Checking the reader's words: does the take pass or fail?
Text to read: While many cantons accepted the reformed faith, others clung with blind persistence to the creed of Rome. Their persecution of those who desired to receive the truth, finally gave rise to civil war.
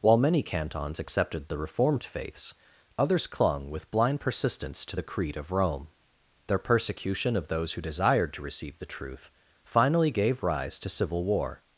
fail